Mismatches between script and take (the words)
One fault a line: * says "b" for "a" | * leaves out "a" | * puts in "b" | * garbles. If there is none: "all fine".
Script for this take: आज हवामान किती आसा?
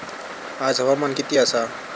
all fine